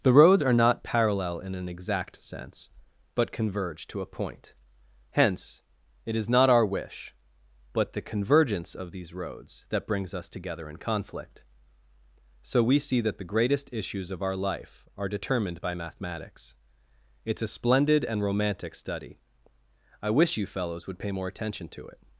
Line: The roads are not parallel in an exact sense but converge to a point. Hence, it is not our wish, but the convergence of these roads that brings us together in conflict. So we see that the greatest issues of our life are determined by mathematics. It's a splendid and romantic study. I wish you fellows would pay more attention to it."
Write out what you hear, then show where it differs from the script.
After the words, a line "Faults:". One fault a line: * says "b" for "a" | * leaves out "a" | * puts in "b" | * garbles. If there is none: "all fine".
The roads are not parallel in an exact sense but converge to a point. Hence, it is not our wish, but the convergence of these roads that brings us together in conflict. So we see that the greatest issues of our life are determined by mathematics. It's a splendid and romantic study. I wish you fellows would pay more attention to it."
Faults:
all fine